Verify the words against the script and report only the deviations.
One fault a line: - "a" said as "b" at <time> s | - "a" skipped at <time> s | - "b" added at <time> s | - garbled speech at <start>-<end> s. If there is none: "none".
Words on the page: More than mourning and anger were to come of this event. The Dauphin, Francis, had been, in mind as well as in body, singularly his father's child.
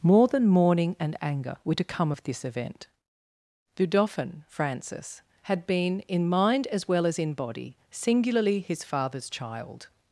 none